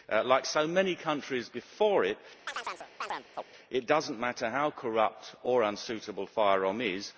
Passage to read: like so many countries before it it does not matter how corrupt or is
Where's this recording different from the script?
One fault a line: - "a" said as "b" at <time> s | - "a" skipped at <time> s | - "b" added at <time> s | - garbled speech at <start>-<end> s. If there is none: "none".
- "unsuitable fyrom" added at 5.6 s